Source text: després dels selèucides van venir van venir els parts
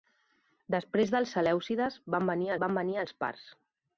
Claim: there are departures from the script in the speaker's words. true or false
false